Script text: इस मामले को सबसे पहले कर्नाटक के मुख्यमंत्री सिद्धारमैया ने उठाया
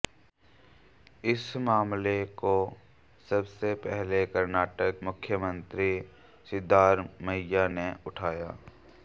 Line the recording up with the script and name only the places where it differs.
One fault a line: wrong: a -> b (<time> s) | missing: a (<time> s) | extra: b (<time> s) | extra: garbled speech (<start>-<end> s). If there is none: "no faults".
missing: के (5.0 s)